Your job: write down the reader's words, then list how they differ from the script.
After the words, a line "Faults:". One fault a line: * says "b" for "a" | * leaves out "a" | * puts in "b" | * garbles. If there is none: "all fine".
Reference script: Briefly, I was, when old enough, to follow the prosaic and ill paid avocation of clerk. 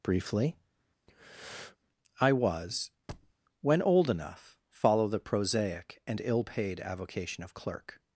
Briefly, I was, when old enough, follow the prosaic and ill paid avocation of clerk.
Faults:
* leaves out "to"